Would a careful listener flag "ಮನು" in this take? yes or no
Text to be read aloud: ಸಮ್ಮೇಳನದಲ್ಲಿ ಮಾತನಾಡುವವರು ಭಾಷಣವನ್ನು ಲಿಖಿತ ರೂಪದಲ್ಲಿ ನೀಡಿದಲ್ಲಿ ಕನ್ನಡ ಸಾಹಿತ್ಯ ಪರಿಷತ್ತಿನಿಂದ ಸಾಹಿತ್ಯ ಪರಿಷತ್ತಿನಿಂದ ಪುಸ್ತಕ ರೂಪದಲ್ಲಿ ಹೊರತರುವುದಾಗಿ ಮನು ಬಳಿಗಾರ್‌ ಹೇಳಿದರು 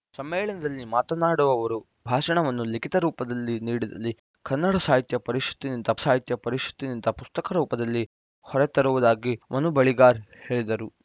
no